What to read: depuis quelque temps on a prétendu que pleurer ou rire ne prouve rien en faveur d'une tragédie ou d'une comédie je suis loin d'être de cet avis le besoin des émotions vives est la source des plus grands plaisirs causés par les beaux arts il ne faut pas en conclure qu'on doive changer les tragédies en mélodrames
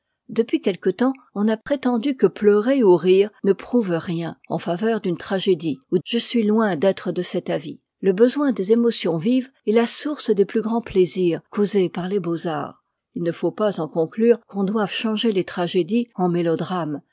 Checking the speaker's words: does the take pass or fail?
fail